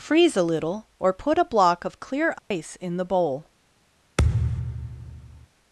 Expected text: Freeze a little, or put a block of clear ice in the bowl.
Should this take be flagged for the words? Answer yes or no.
no